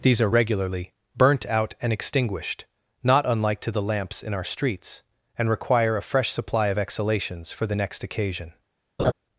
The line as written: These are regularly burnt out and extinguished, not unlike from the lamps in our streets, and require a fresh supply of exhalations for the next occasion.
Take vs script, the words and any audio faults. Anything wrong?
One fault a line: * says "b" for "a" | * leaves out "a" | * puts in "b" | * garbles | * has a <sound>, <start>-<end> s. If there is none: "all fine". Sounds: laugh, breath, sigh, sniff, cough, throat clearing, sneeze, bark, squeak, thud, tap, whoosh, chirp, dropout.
* says "to" for "from"
* has a laugh, 9.0-9.1 s